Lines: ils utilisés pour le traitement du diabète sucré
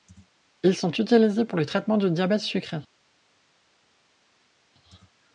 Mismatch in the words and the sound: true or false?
true